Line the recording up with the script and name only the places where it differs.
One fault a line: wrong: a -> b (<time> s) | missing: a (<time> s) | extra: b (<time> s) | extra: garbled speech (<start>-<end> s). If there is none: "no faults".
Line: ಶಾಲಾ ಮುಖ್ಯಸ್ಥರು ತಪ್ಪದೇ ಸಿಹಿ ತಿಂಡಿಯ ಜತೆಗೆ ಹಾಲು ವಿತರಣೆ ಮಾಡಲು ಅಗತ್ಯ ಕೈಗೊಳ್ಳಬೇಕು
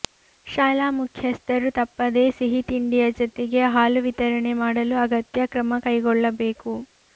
extra: ಕ್ರಮ (5.5 s)